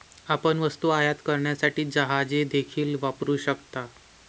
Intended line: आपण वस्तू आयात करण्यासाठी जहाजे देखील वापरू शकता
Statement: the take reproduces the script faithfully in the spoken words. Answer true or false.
true